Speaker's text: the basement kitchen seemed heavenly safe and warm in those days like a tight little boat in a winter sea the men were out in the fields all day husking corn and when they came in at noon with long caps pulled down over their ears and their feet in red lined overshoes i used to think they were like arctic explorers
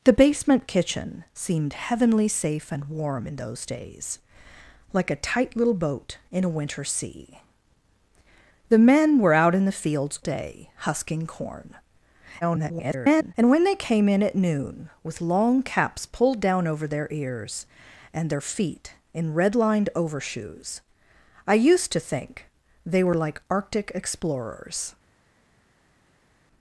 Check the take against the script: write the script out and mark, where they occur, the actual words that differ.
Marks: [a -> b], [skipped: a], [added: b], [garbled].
the basement kitchen seemed heavenly safe and warm in those days like a tight little boat in a winter sea the men were out in the fields [skipped: all] day husking corn [garbled] and when they came in at noon with long caps pulled down over their ears and their feet in red lined overshoes i used to think they were like arctic explorers